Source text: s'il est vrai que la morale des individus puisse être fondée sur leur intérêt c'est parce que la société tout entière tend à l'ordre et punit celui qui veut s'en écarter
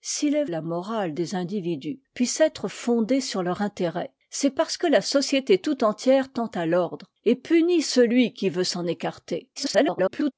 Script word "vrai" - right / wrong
wrong